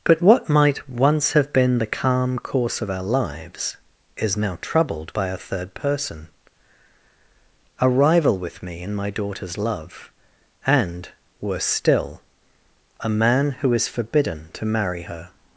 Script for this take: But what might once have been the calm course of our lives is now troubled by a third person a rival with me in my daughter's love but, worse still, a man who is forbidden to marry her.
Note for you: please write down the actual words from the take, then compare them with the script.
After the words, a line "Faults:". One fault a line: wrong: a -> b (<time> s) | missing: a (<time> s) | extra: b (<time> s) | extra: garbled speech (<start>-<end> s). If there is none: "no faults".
But what might once have been the calm course of our lives is now troubled by a third person a rival with me in my daughter's love and, worse still, a man who is forbidden to marry her.
Faults:
wrong: but -> and (10.7 s)